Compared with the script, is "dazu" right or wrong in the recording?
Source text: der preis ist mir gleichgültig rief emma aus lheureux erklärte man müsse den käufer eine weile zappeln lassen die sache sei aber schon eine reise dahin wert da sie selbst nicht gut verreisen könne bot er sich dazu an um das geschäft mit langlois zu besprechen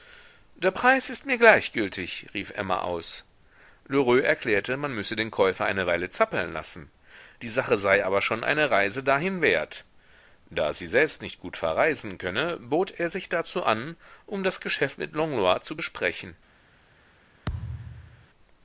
right